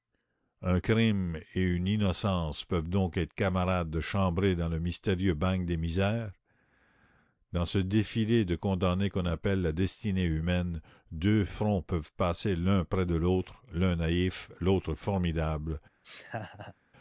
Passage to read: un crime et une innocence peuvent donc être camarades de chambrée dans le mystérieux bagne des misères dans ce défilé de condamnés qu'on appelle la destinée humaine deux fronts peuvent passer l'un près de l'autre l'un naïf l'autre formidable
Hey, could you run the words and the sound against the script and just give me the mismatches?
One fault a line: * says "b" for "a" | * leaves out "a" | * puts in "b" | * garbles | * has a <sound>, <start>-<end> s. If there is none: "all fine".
* has a laugh, 16.0-16.7 s